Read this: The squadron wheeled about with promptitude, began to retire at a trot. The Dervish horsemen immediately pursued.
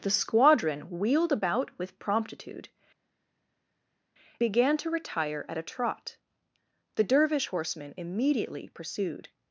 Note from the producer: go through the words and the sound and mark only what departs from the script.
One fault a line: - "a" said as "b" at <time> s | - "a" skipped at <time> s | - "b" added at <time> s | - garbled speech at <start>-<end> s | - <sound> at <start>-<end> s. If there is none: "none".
none